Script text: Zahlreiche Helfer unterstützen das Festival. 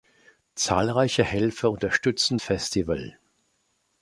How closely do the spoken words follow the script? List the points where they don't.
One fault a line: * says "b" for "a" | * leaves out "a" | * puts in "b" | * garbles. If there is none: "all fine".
* leaves out "das"